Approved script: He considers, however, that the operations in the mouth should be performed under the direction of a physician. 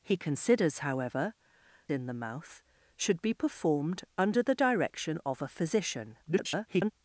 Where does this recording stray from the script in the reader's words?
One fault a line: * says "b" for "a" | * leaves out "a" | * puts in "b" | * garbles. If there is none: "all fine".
* leaves out "that the operations"
* garbles